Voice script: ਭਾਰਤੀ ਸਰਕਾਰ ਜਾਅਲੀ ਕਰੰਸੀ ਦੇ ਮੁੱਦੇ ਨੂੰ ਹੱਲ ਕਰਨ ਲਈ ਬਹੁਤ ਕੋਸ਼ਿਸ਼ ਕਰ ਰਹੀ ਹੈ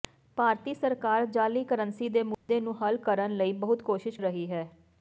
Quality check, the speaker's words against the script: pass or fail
fail